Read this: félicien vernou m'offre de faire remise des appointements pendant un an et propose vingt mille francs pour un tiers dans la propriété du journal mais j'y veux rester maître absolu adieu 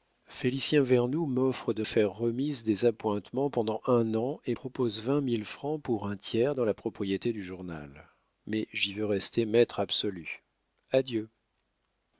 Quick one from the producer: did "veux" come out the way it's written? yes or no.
yes